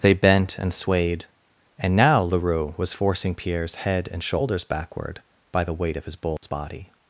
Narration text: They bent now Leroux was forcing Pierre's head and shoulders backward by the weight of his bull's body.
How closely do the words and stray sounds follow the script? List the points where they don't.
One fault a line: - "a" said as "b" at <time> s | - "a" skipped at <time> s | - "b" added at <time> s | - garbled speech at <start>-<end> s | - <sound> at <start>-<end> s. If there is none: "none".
- "and swayed and" added at 0.6 s
- dropout at 6.4-6.4 s